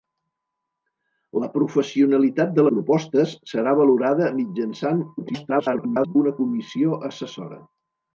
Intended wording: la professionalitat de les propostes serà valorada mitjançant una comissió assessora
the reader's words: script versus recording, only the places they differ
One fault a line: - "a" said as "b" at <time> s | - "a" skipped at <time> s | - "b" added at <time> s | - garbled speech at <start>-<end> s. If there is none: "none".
- "les" skipped at 2.6 s
- garbled speech at 5.2-6.2 s